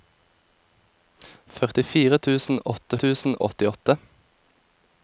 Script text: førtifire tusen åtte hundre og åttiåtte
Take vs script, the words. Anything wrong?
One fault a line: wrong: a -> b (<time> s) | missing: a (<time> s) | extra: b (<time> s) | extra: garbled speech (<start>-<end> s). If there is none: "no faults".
wrong: hundre -> tusen (3.1 s)